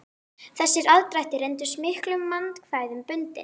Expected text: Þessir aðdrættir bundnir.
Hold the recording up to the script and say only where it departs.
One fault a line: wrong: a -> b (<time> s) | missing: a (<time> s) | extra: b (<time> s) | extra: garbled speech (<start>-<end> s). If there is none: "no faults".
extra: reyndust miklum vandkvæðum (1.4 s)